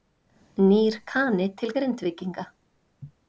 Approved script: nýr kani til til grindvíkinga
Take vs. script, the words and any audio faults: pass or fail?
fail